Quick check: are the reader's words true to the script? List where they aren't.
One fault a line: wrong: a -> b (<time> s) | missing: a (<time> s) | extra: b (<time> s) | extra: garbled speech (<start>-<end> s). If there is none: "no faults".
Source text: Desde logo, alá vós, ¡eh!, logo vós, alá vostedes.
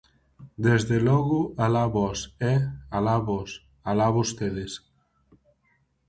wrong: logo -> alá (3.0 s)